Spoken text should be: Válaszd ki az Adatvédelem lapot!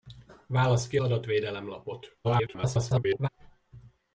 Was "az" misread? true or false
true